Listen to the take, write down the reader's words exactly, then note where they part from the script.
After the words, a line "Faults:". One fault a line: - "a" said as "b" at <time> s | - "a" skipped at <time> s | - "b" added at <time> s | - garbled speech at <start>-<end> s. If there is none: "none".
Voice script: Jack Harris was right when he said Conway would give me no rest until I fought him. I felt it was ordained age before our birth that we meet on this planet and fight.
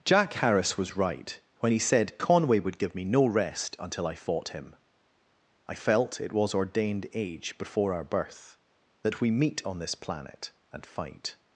Jack Harris was right when he said Conway would give me no rest until I fought him. I felt it was ordained age before our birth that we meet on this planet and fight.
Faults:
none